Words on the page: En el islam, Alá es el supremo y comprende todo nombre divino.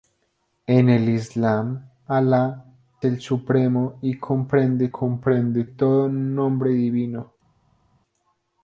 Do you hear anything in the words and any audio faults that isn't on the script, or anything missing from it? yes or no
yes